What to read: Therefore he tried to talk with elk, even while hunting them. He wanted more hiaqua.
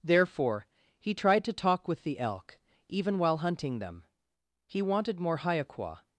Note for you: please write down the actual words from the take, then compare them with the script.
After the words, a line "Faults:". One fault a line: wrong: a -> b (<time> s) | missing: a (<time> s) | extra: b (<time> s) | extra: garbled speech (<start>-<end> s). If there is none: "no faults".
Therefore he tried to talk with the elk, even while hunting them. He wanted more hiaqua.
Faults:
extra: the (2.0 s)